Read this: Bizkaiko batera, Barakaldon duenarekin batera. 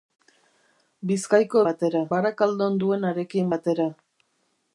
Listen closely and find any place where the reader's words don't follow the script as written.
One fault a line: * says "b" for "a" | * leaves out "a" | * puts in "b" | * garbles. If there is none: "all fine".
all fine